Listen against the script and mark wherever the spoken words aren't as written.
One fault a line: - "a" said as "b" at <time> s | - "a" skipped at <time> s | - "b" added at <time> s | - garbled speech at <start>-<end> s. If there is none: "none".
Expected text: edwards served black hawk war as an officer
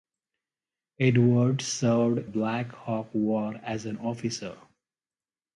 none